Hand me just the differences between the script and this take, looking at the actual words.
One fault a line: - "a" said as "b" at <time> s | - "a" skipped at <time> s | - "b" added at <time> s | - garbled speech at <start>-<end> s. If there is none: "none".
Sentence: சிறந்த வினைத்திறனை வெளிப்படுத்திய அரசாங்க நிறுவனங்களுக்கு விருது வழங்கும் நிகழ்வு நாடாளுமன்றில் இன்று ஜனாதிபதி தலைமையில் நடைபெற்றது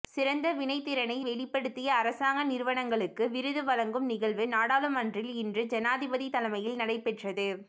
none